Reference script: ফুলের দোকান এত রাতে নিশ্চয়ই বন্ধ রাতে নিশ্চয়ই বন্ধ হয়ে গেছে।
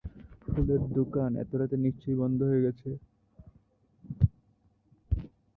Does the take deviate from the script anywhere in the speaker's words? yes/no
yes